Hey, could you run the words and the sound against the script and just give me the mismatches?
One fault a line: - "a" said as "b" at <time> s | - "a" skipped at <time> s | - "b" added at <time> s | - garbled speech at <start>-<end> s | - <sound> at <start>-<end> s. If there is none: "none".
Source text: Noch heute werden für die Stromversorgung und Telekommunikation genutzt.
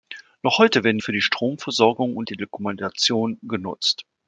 none